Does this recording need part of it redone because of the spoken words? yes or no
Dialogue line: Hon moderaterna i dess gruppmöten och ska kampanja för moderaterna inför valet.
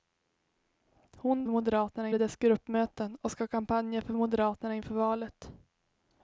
no